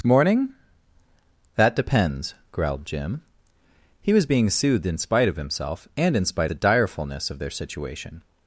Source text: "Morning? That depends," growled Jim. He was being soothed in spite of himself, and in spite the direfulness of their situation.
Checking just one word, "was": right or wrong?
right